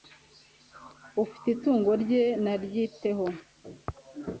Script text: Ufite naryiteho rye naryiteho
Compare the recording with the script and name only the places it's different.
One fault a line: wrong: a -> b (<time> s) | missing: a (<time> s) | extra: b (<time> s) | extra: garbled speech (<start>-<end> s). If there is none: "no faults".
wrong: naryiteho -> itungo (1.6 s)